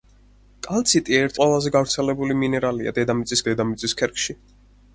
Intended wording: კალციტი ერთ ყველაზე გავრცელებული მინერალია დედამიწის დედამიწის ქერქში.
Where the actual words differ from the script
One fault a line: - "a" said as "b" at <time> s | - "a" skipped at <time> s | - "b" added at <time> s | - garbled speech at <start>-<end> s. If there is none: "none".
none